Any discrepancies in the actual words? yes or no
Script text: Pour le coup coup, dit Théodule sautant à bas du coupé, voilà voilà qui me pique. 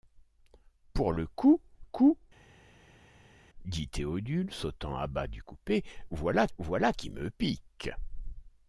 no